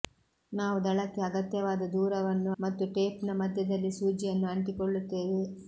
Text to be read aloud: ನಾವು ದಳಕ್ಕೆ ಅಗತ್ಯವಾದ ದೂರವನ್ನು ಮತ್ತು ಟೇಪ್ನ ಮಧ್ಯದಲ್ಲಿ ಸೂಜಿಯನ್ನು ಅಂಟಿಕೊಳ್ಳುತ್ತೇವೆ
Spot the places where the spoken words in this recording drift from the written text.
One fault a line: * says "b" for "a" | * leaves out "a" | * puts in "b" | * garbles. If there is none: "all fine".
all fine